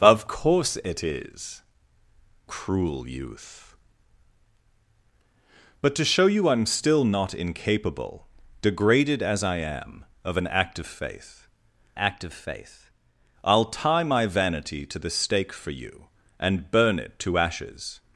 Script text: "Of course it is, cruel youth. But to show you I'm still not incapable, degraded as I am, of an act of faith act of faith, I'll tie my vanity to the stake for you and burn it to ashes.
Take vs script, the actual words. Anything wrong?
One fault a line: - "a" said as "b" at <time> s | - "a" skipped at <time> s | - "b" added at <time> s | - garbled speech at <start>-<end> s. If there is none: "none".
none